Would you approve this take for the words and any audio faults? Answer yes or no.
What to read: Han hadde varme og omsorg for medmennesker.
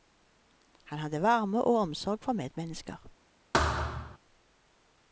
no